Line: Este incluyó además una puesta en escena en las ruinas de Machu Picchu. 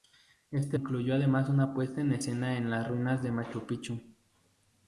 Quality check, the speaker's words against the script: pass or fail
pass